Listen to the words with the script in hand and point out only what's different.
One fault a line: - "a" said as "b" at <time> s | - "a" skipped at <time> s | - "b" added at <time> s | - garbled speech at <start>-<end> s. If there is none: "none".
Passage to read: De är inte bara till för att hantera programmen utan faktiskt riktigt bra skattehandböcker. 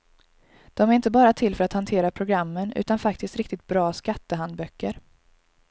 none